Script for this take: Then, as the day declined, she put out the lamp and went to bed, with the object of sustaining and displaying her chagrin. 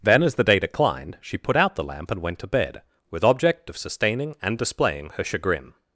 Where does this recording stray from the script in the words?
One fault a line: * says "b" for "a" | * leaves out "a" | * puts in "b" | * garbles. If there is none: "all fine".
* leaves out "the"